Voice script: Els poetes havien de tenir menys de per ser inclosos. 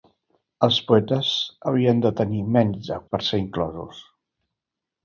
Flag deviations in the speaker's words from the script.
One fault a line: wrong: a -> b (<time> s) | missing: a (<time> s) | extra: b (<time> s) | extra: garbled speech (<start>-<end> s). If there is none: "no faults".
no faults